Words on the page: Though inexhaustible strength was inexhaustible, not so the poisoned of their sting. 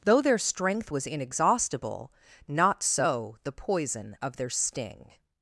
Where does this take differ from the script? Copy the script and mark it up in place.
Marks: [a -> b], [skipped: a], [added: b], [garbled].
Though [inexhaustible -> their] strength was inexhaustible, not so the [poisoned -> poison] of their sting.